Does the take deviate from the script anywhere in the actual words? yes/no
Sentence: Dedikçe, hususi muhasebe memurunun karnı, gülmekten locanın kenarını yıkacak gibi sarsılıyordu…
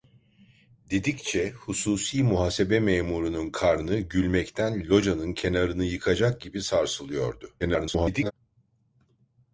yes